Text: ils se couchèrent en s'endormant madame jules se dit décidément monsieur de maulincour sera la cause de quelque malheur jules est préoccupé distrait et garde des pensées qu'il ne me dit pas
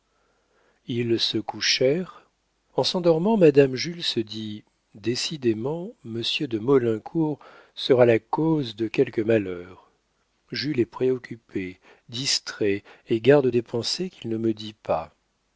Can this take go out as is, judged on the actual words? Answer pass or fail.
pass